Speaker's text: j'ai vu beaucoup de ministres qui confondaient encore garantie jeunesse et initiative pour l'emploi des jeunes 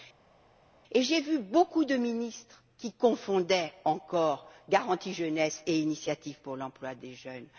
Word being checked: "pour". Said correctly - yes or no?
yes